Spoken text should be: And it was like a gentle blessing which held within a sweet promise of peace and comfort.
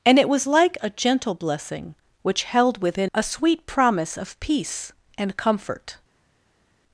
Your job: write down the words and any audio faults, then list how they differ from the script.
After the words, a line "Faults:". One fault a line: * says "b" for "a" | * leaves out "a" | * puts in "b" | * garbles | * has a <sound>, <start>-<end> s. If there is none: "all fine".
And it was like a gentle blessing which held within a sweet promise of peace and comfort.
Faults:
all fine